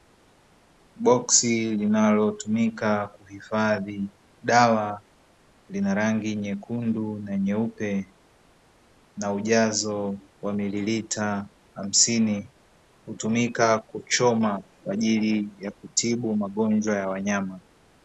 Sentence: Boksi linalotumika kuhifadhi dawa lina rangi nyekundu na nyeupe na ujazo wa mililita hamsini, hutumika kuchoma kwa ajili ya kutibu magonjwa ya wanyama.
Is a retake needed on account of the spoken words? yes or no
no